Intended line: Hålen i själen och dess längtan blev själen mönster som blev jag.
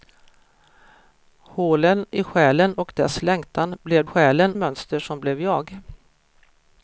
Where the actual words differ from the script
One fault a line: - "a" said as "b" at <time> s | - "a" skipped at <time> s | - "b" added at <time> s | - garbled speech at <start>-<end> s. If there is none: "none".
none